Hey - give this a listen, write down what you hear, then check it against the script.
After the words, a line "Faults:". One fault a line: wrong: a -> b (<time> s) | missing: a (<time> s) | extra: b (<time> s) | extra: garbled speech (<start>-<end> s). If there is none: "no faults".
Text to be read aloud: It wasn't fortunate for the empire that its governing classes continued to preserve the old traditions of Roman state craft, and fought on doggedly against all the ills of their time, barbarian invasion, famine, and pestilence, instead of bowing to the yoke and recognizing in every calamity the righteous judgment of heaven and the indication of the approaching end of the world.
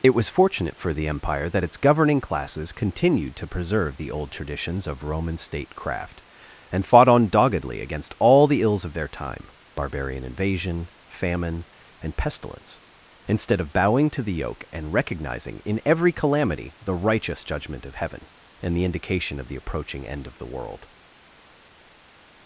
It was fortunate for the empire that its governing classes continued to preserve the old traditions of Roman state craft, and fought on doggedly against all the ills of their time, barbarian invasion, famine, and pestilence, instead of bowing to the yoke and recognizing in every calamity the righteous judgment of heaven and the indication of the approaching end of the world.
Faults:
wrong: wasn't -> was (0.1 s)